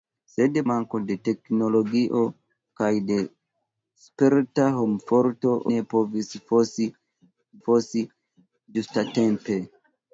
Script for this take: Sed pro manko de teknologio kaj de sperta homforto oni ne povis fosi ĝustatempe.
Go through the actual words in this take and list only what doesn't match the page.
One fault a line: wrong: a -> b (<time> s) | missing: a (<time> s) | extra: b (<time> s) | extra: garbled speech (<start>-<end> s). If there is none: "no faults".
missing: pro (0.6 s)
missing: oni (5.5 s)
extra: fosi (7.7 s)